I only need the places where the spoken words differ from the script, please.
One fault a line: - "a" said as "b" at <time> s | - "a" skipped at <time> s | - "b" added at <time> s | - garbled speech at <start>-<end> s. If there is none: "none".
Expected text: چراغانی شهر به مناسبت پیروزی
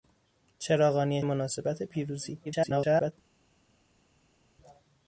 - "شهر به" skipped at 1.2 s
- garbled speech at 2.4-3.1 s